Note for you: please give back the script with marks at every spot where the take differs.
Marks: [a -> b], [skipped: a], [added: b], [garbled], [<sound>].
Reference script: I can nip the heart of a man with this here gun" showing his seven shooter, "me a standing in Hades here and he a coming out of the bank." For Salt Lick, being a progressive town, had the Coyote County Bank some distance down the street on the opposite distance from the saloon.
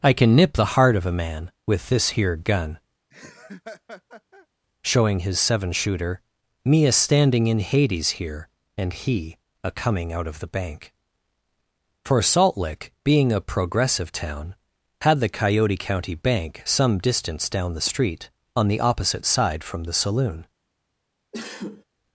I can nip the heart of a man with this here gun" [laugh] showing his seven shooter, "me a standing in Hades here and he a coming out of the bank." For Salt Lick, being a progressive town, had the Coyote County Bank some distance down the street on the opposite [distance -> side] from the saloon. [sneeze]